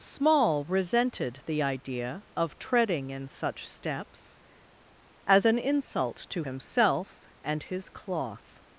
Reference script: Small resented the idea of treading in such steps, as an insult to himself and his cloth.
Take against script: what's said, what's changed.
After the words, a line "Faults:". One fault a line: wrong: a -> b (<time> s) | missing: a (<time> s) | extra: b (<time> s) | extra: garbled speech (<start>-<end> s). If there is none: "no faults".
Small resented the idea of treading in such steps, as an insult to himself and his cloth.
Faults:
no faults